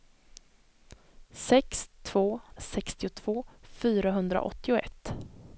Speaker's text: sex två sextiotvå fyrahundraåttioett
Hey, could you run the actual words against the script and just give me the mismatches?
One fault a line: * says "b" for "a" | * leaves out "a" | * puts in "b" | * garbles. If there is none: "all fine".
all fine